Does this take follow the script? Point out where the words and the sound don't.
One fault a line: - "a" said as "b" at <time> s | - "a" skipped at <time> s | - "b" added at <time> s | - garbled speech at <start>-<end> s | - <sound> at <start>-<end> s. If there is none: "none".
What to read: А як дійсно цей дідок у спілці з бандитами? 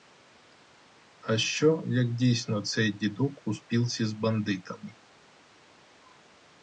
- "що" added at 1.4 s